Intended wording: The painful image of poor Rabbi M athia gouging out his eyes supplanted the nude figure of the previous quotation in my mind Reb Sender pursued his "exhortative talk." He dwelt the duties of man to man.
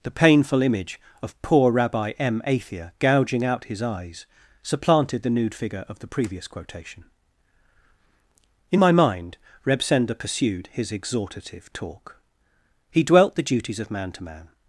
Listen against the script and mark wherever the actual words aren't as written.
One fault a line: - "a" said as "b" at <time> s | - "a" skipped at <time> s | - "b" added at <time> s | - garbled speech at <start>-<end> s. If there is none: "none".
none